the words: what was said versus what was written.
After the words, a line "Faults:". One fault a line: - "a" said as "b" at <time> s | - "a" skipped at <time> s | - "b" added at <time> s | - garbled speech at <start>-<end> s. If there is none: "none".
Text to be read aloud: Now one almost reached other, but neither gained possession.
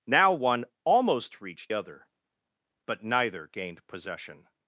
Now one almost reached other, but neither gained possession.
Faults:
none